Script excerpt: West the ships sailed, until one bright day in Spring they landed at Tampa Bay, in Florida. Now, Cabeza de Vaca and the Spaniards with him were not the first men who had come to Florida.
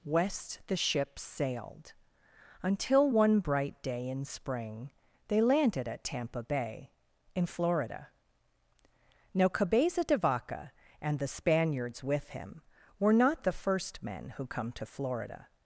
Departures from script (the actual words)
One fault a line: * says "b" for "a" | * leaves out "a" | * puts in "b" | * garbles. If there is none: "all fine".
* leaves out "had"